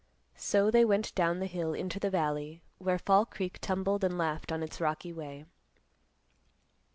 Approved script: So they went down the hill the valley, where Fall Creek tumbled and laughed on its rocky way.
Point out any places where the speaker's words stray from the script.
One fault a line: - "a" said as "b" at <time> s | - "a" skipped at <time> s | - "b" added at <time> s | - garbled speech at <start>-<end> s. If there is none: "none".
- "into" added at 1.7 s